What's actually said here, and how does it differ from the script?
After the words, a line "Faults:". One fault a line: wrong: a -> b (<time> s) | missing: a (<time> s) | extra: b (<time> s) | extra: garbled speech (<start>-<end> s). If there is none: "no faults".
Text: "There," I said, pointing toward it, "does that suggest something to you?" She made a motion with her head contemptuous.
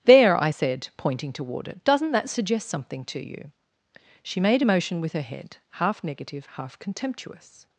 "There," I said, pointing toward it, "doesn't that suggest something to you?" She made a motion with her head half negative, half contemptuous.
Faults:
wrong: does -> doesn't (1.8 s)
extra: half negative half (5.7 s)